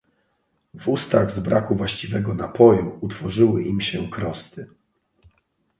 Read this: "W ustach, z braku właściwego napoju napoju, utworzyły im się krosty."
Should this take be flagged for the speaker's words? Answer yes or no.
yes